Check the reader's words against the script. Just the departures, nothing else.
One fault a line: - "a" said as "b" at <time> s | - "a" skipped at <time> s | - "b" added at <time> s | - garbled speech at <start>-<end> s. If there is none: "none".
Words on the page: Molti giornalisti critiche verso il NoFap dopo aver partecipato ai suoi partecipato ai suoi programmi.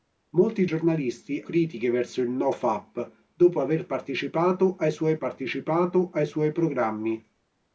none